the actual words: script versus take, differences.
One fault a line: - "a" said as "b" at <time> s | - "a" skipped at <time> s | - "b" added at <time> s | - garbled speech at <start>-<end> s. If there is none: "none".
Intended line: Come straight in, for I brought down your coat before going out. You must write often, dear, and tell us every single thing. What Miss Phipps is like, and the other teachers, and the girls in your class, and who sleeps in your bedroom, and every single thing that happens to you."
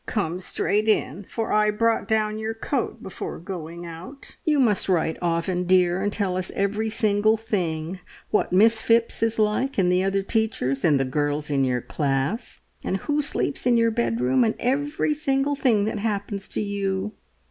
none